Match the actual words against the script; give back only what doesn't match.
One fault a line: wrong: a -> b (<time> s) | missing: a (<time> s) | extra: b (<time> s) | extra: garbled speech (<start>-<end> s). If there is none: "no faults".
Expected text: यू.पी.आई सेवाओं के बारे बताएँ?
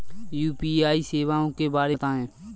no faults